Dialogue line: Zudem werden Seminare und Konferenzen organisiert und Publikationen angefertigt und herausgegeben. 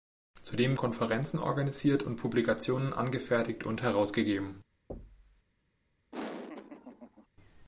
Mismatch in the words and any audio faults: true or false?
true